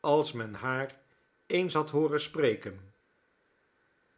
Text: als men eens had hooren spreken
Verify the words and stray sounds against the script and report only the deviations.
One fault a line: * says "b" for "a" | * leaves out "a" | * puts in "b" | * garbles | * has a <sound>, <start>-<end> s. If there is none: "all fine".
* puts in "haar"